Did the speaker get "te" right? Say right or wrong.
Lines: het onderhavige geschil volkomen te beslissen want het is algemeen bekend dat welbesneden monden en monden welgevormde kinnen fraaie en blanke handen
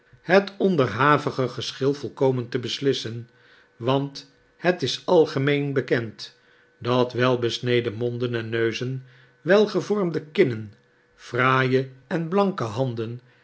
right